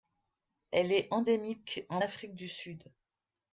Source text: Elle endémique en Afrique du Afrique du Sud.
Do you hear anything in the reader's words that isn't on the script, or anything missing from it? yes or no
yes